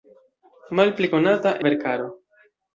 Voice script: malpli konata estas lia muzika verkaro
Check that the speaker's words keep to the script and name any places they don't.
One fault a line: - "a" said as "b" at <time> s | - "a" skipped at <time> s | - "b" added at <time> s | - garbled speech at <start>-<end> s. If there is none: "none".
- "estas lia muzika" skipped at 1.5 s